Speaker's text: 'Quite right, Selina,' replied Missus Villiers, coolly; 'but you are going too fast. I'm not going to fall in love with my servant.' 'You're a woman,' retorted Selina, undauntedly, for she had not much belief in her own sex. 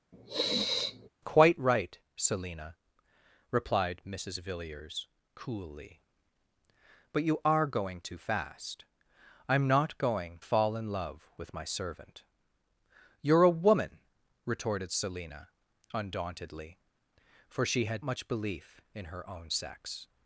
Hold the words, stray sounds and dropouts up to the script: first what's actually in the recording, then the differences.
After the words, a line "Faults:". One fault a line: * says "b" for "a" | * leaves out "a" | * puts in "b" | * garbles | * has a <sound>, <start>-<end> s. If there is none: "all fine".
'Quite right, Selina,' replied Missus Villiers, coolly; 'but you are going too fast. I'm not going fall in love with my servant.' 'You're a woman,' retorted Selina, undauntedly, for she had much belief in her own sex.
Faults:
* has a sniff, 0.1-1.1 s
* leaves out "to"
* leaves out "not"